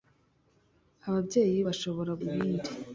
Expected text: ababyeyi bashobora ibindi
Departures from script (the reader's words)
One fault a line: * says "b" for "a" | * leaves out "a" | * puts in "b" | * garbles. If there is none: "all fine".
all fine